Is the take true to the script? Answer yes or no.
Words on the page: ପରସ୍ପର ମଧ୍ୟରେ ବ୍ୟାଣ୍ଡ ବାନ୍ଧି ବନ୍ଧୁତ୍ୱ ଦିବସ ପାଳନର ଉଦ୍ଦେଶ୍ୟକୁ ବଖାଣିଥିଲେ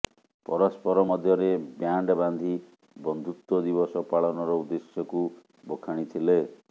yes